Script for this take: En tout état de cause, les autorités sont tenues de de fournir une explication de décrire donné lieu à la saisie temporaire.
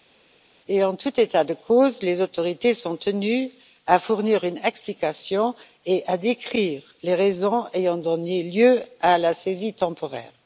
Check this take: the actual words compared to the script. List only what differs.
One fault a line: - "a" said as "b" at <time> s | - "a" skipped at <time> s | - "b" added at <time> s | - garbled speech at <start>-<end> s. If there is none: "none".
- "de" skipped at 4.0 s
- "et" added at 5.8 s
- "les raisons ayant" added at 7.0 s